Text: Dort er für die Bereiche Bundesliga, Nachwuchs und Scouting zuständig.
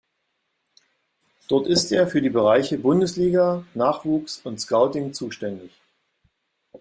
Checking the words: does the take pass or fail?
fail